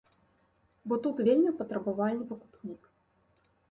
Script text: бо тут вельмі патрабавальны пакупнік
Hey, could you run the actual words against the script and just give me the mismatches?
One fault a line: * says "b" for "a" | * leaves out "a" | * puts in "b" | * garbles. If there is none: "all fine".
all fine